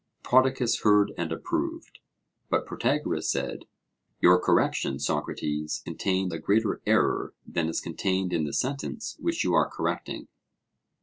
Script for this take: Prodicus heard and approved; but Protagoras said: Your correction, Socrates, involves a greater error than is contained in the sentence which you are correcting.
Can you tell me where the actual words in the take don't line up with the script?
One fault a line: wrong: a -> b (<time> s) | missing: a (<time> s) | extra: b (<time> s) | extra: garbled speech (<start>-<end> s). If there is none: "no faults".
wrong: involves -> contained (5.8 s)